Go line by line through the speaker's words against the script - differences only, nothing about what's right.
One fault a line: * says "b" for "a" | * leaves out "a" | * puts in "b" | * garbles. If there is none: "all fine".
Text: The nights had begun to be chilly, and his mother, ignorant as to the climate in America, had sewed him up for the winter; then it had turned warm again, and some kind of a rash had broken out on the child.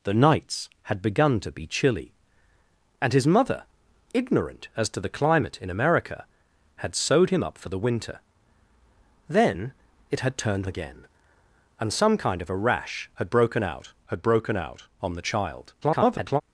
* leaves out "warm"
* puts in "had broken out"
* garbles